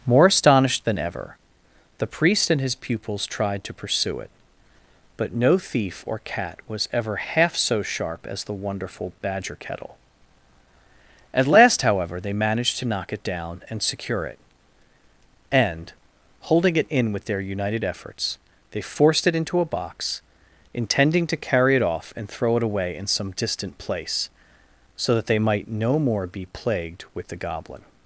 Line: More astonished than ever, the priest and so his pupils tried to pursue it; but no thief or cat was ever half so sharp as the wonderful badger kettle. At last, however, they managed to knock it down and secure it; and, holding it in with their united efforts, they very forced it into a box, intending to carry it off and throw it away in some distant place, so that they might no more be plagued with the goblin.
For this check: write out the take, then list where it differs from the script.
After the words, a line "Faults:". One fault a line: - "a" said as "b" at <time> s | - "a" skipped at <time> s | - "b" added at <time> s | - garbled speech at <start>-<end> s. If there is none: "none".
More astonished than ever, the priest and his pupils tried to pursue it; but no thief or cat was ever half so sharp as the wonderful badger kettle. At last, however, they managed to knock it down and secure it; and, holding it in with their united efforts, they forced it into a box, intending to carry it off and throw it away in some distant place, so that they might no more be plagued with the goblin.
Faults:
- "so" skipped at 2.6 s
- "very" skipped at 18.8 s